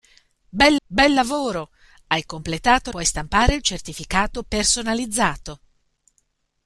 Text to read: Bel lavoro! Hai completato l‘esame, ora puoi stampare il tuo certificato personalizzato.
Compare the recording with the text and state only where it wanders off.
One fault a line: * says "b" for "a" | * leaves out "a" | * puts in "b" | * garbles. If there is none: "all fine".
* puts in "bel"
* leaves out "l‘esame ora"
* leaves out "tuo"